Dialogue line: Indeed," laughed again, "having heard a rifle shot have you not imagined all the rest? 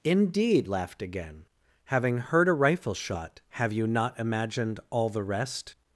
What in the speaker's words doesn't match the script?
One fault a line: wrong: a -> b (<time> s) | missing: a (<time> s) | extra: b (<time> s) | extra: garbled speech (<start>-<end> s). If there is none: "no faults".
no faults